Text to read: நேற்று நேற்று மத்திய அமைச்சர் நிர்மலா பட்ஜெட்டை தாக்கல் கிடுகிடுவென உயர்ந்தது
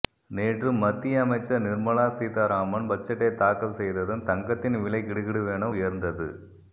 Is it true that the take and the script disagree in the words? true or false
true